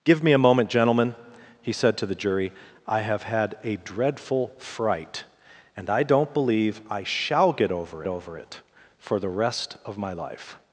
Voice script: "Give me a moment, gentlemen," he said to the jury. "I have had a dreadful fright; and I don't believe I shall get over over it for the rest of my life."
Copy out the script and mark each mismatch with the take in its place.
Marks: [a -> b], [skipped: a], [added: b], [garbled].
"Give me a moment, gentlemen," he said to the jury. "I have had a dreadful fright; and I don't believe I shall get over over it for the rest of my life."